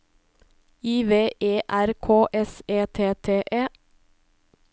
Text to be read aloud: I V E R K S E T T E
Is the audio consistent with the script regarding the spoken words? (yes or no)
yes